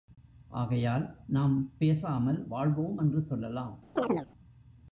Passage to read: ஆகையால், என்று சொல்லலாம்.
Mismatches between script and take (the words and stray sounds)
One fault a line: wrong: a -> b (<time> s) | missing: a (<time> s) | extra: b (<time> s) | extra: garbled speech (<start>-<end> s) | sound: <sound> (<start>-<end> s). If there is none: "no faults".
extra: நாம் பேசாமல் வாழ்வோம் (1.3 s)
sound: chirp (4.0-4.3 s)